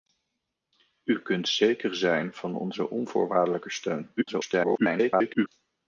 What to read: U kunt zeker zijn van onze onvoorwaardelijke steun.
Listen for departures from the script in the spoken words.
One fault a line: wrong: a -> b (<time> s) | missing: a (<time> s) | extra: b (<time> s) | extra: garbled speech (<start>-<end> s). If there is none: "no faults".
extra: garbled speech (4.2-5.5 s)